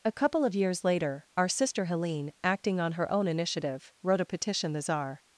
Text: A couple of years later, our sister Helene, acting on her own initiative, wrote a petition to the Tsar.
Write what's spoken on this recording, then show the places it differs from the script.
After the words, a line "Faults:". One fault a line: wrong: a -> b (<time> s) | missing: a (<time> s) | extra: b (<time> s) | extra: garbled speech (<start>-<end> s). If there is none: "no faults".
A couple of years later, our sister Helene, acting on her own initiative, wrote a petition the Tsar.
Faults:
missing: to (4.7 s)